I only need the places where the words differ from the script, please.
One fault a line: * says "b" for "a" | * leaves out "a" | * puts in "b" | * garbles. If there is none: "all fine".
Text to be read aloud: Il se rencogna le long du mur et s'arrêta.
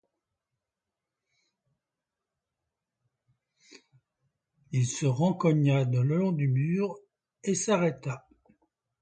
all fine